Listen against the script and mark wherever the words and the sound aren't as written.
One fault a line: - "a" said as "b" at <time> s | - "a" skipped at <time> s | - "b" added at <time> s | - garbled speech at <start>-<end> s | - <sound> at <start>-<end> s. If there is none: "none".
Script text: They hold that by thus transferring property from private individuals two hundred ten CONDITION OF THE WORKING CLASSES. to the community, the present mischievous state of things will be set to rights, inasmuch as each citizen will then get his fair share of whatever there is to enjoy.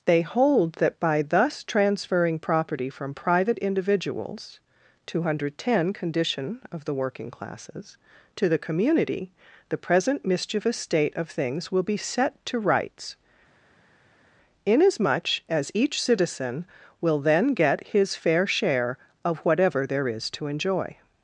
none